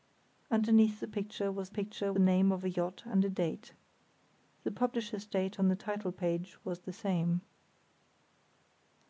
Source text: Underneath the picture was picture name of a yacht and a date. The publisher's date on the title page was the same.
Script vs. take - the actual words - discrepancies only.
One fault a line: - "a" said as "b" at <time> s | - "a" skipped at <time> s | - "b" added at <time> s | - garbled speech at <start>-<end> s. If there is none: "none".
none